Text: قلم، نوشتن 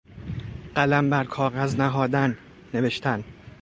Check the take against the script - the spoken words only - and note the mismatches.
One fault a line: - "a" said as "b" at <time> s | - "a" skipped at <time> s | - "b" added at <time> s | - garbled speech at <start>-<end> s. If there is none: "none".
- "بر کاغذ نهادن" added at 1.1 s